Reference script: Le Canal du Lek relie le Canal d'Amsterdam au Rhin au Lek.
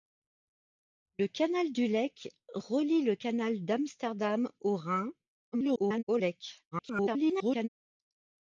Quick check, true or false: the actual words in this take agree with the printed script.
false